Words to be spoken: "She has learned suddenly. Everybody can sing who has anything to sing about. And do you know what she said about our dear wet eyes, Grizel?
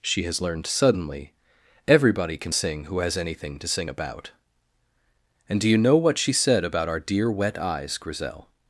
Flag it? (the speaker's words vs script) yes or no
no